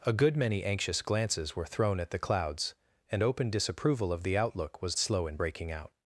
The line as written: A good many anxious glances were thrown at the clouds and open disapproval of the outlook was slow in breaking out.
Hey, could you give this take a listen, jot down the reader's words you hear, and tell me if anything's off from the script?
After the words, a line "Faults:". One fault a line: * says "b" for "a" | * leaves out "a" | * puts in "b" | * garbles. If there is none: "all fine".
A good many anxious glances were thrown at the clouds and open disapproval of the outlook was slow in breaking out.
Faults:
all fine